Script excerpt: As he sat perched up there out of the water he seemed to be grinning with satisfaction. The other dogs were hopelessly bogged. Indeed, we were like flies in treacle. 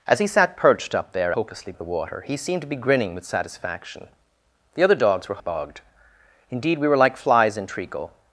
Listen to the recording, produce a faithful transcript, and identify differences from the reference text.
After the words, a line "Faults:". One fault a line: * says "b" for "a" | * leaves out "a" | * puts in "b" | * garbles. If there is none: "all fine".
As he sat perched up there hopelessly of the water he seemed to be grinning with satisfaction. The other dogs were bogged. Indeed, we were like flies in treacle.
Faults:
* says "hopelessly" for "out"
* leaves out "hopelessly"